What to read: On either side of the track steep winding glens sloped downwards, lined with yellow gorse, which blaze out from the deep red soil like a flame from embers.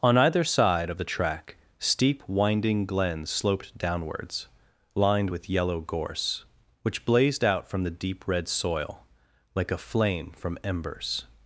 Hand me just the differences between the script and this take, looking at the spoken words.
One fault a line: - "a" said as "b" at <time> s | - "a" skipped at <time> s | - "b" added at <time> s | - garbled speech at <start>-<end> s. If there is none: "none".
- "blaze" said as "blazed" at 7.1 s